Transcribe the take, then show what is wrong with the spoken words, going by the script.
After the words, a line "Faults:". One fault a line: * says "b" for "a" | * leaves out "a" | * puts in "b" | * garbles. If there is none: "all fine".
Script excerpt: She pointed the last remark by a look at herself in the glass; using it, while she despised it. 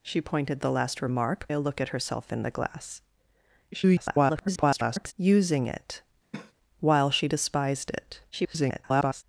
She pointed the last remark a look at herself in the glass; [garbled] using it, while she despised it. [garbled]
Faults:
* leaves out "by"
* garbles
* garbles